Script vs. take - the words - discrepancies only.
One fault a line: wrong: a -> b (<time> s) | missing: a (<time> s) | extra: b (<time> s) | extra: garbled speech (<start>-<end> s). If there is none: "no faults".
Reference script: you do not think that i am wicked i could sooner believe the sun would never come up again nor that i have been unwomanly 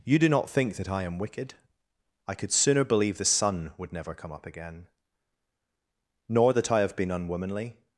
no faults